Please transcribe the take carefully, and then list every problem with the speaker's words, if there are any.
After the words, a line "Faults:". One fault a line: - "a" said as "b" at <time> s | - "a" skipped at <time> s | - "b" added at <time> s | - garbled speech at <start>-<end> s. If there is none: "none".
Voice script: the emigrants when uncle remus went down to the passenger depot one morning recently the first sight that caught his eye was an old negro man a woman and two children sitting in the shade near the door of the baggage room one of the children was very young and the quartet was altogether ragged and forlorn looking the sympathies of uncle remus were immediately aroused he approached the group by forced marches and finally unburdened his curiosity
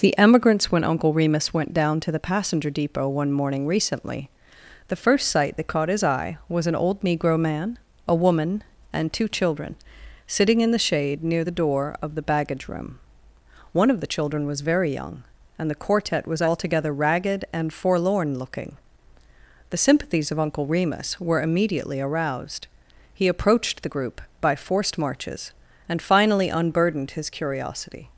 the emigrants when uncle remus went down to the passenger depot one morning recently the first sight that caught his eye was an old negro man a woman and two children sitting in the shade near the door of the baggage room one of the children was very young and the quartet was altogether ragged and forlorn looking the sympathies of uncle remus were immediately aroused he approached the group by forced marches and finally unburdened his curiosity
Faults:
none